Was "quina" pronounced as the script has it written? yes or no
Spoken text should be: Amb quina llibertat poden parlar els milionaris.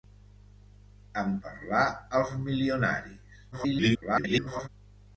no